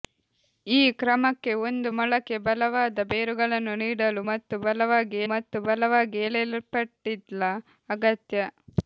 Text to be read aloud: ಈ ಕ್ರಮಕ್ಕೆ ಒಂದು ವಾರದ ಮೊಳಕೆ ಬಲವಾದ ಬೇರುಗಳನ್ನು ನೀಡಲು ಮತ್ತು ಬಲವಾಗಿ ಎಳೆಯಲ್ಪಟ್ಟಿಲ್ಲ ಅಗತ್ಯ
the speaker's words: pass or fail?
fail